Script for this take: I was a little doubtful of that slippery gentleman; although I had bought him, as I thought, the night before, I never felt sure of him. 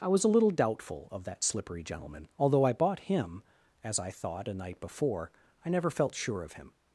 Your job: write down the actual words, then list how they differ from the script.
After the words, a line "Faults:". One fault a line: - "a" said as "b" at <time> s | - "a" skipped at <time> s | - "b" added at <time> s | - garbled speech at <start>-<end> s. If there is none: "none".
I was a little doubtful of that slippery gentleman; although I bought him, as I thought, a night before, I never felt sure of him.
Faults:
- "had" skipped at 2.7 s
- "the" said as "a" at 4.5 s